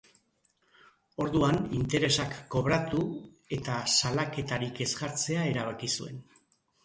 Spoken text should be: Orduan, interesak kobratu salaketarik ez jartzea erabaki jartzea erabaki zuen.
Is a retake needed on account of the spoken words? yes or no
yes